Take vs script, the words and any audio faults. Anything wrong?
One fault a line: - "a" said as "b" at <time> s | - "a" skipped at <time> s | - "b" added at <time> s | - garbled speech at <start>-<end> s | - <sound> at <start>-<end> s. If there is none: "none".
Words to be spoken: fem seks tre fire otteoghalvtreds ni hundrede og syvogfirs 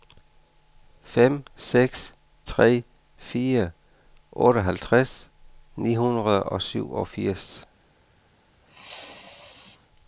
- sneeze at 8.6-9.9 s